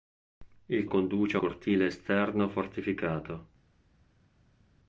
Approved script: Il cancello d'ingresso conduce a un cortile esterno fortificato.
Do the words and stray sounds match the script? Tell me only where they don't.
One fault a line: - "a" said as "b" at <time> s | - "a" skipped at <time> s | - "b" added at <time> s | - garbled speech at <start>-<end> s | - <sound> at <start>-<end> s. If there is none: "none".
- "cancello d'ingresso" skipped at 0.8 s
- "un" skipped at 1.4 s